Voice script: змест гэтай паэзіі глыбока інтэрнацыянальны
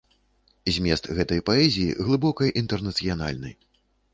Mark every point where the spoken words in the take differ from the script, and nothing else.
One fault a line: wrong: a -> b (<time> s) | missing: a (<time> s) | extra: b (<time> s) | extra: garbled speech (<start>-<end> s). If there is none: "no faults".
no faults